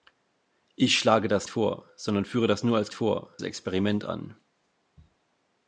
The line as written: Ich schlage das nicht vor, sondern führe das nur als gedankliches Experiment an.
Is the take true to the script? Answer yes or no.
no